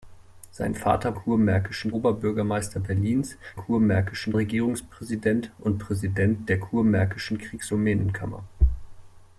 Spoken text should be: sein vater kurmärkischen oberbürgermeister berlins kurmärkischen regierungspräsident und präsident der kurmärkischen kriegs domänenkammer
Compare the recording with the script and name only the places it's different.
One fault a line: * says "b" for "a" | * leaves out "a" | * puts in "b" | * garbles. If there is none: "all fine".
all fine